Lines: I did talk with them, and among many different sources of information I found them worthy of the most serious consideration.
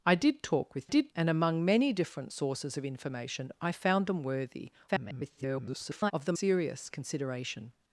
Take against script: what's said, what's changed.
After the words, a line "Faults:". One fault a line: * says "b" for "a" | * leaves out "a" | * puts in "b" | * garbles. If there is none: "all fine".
I did talk with did, and among many different sources of information I found them worthy [garbled] of the serious consideration.
Faults:
* says "did" for "them"
* garbles
* leaves out "most"